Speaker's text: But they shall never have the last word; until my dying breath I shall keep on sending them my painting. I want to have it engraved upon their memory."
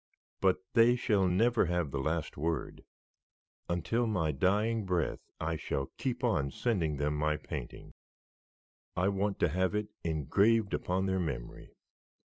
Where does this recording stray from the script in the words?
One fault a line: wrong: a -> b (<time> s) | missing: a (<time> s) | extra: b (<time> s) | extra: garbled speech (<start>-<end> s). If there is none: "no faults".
no faults